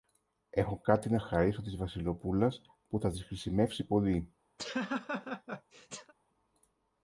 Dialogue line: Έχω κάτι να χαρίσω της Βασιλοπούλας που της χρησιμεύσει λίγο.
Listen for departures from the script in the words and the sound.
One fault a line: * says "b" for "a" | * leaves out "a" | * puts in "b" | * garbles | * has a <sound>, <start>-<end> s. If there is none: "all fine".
* puts in "θα"
* says "πολύ" for "λίγο"
* has a laugh, 4.6-6.1 s